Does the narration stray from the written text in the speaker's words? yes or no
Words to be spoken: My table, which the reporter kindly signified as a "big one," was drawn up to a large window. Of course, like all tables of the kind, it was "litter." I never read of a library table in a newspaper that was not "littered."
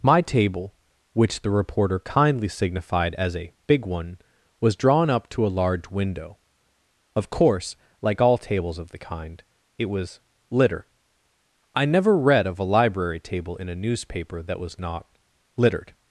no